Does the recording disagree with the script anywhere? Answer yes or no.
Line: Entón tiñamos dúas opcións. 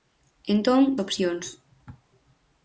yes